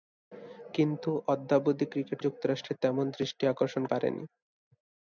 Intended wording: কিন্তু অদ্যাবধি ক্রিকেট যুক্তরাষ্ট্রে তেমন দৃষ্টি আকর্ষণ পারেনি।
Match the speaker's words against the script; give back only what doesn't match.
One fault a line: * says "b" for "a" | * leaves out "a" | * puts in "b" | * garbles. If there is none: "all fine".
all fine